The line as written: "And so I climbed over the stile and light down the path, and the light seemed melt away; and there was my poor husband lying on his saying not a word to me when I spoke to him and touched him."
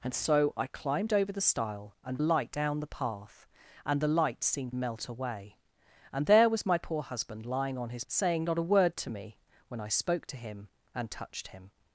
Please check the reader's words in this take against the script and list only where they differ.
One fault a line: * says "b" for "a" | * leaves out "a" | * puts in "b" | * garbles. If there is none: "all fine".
all fine